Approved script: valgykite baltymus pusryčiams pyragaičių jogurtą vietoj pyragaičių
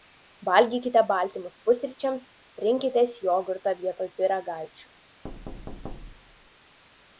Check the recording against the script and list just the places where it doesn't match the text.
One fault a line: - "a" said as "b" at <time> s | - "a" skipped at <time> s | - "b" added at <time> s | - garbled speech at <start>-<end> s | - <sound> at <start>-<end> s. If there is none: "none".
- "pyragaičių" said as "rinkitės" at 2.7 s
- thud at 5.2-6.5 s